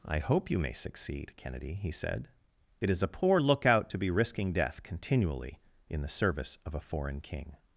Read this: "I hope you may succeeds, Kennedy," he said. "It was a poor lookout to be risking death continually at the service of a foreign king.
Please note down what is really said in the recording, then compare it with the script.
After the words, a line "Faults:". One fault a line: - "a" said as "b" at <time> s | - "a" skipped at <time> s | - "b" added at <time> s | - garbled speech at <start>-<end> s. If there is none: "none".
"I hope you may succeed, Kennedy," he said. "It is a poor lookout to be risking death continually in the service of a foreign king.
Faults:
- "succeeds" said as "succeed" at 0.7 s
- "was" said as "is" at 2.9 s
- "at" said as "in" at 5.9 s